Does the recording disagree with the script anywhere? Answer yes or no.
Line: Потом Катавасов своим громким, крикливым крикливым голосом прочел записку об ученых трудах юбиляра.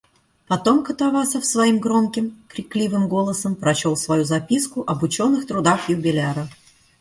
yes